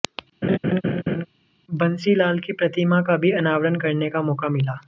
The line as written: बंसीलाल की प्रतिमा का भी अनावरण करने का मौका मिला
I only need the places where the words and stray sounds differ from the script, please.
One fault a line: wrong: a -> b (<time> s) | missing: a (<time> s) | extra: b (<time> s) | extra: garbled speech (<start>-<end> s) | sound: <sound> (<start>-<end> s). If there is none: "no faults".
sound: laugh (0.4-1.3 s)